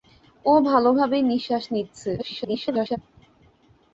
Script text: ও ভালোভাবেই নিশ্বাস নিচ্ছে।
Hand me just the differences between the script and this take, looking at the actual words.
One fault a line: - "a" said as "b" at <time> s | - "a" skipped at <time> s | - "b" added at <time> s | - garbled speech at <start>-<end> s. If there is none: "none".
- garbled speech at 2.2-3.0 s